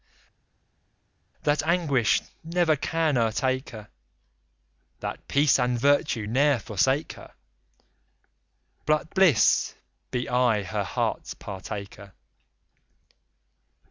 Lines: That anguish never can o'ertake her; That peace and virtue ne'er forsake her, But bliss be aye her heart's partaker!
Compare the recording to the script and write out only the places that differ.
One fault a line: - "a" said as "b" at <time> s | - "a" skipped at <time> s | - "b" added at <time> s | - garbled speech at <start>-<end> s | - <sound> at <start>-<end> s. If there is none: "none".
none